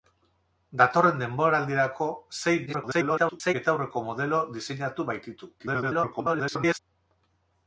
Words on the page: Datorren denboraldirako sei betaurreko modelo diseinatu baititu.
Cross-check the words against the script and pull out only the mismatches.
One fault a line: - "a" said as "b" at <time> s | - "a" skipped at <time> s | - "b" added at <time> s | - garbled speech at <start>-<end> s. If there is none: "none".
- garbled speech at 2.7-3.5 s
- garbled speech at 5.6-6.8 s